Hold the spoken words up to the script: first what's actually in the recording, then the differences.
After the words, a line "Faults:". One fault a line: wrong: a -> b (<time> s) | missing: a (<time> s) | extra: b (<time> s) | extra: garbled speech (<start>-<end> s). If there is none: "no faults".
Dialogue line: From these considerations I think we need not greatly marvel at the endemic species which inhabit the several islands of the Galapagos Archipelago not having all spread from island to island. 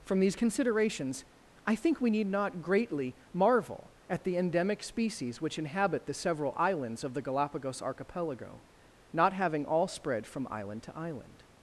From these considerations I think we need not greatly marvel at the endemic species which inhabit the several islands of the Galapagos Archipelago not having all spread from island to island.
Faults:
no faults